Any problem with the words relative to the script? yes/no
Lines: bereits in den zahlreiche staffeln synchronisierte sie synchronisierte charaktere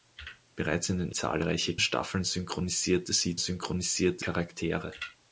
no